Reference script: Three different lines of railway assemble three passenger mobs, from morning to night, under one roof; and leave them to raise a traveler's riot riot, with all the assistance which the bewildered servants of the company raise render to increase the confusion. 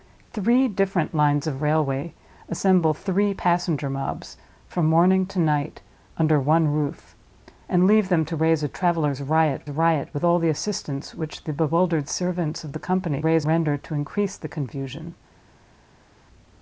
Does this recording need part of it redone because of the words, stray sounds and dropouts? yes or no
no